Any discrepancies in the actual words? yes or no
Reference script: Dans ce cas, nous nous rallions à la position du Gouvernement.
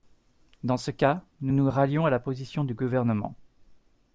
no